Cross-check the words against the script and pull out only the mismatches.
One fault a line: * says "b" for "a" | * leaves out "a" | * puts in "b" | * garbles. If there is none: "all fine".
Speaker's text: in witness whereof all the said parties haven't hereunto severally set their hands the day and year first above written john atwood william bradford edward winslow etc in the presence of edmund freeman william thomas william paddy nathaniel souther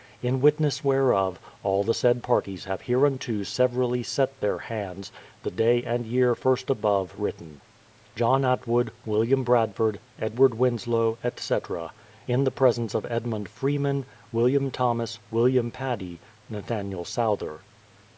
* says "have" for "haven't"